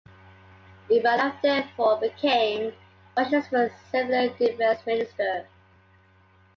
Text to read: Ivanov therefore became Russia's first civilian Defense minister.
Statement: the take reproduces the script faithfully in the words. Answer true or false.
true